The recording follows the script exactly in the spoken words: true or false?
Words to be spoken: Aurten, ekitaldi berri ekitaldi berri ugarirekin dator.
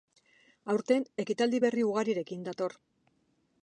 false